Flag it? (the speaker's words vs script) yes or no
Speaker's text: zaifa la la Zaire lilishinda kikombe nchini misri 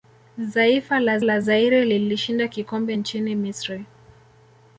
no